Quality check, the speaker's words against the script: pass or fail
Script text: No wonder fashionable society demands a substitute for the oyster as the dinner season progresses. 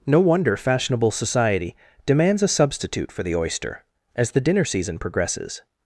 pass